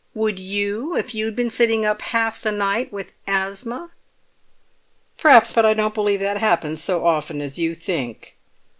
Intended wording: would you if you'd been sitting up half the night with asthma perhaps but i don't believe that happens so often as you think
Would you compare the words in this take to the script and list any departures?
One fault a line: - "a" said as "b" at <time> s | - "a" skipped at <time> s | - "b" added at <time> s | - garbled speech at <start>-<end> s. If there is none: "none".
none